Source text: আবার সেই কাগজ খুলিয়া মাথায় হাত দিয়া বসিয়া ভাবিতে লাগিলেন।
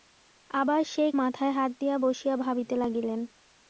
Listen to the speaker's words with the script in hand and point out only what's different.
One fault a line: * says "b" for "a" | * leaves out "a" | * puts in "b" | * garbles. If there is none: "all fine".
* leaves out "কাগজ খুলিয়া"